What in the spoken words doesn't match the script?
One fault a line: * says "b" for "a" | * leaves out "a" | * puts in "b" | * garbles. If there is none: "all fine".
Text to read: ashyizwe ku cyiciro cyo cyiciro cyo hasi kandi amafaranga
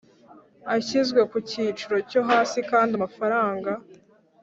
* leaves out "cyiciro cyo"